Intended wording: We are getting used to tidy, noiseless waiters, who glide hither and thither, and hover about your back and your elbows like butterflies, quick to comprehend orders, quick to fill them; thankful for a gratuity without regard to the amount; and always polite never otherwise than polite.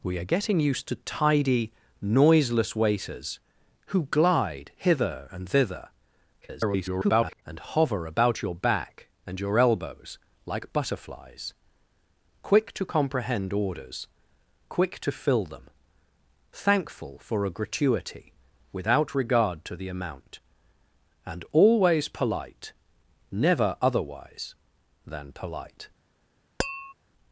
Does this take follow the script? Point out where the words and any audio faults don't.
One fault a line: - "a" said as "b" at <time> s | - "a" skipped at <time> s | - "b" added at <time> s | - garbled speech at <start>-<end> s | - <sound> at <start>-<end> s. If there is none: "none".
- garbled speech at 6.4-7.4 s
- tap at 26.6-26.9 s